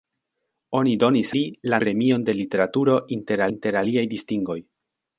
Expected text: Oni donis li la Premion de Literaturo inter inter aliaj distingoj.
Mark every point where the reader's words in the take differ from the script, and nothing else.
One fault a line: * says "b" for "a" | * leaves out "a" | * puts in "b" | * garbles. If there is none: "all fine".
all fine